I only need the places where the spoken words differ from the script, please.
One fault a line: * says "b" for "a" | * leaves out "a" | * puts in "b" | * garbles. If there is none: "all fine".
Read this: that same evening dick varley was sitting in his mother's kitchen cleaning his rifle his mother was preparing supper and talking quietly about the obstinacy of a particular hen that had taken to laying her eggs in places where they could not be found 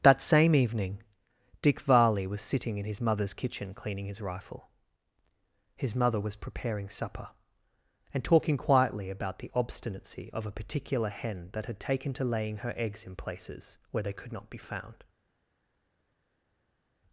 all fine